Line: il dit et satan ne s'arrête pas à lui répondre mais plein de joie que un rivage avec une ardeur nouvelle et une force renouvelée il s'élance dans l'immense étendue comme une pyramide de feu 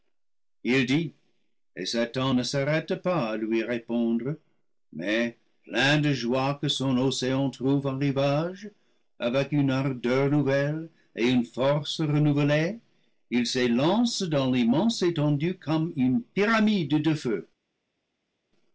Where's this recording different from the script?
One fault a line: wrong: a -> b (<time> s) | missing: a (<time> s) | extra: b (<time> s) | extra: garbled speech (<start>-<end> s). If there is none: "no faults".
extra: son océan trouve (6.7 s)